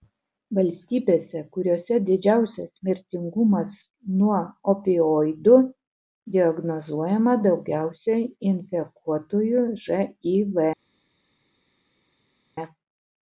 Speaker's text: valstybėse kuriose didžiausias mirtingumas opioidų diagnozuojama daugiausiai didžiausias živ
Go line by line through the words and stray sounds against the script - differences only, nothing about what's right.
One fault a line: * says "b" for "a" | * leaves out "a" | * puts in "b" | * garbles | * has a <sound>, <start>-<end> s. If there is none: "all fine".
* puts in "nuo"
* says "infekuotųjų" for "didžiausias"